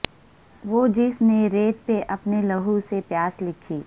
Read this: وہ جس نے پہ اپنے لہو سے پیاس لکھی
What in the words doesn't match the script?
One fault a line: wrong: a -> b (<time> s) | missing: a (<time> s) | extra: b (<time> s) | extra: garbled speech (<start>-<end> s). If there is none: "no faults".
extra: ریت (1.5 s)